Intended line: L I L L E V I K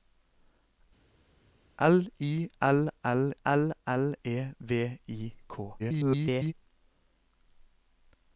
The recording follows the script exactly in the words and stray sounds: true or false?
false